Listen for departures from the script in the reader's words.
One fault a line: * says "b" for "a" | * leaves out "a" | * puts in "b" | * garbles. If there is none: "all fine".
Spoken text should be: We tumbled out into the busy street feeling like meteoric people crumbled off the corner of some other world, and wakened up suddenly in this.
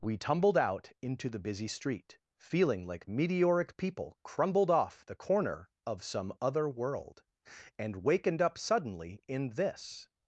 all fine